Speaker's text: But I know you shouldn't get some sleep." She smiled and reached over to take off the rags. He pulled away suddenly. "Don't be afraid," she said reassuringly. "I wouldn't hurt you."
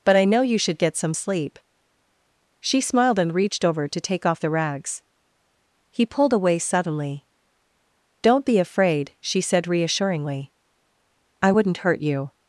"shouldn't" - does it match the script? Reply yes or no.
no